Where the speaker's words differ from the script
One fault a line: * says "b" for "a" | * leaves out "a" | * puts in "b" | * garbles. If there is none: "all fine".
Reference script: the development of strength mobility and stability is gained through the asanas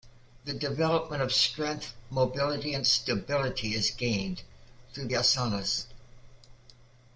* leaves out "the"